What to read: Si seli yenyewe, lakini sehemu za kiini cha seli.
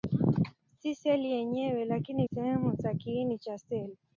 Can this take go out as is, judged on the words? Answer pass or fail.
pass